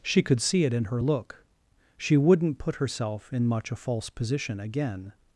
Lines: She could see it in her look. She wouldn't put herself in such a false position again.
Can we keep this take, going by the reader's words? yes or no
no